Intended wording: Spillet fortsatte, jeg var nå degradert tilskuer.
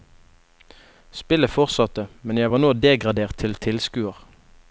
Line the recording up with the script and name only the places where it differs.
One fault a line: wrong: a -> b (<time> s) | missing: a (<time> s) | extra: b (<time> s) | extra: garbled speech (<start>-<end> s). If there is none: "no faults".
extra: men (2.2 s)
extra: til (3.4 s)